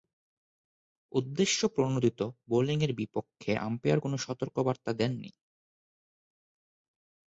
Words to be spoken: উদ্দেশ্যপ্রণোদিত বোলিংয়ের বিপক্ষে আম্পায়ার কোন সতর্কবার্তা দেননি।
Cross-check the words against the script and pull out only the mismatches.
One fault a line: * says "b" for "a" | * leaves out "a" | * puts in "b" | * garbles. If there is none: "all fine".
all fine